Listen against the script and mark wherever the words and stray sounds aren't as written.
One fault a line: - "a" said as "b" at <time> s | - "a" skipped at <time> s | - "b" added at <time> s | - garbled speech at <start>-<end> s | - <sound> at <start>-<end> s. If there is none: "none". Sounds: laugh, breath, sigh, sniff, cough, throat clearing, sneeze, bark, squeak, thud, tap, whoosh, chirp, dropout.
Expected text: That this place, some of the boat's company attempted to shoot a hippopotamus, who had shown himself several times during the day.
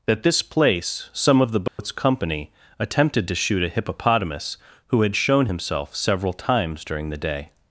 - dropout at 1.7-1.8 s